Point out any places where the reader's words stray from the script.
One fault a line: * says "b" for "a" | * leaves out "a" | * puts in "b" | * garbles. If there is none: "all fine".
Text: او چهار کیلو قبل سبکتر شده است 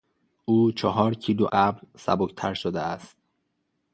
all fine